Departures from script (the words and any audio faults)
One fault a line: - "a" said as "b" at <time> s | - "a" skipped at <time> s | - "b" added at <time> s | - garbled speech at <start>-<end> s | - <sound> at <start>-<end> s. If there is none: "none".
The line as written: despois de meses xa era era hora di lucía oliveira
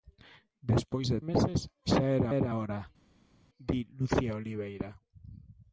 none